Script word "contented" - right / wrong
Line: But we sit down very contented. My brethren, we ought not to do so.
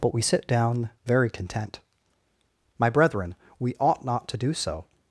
wrong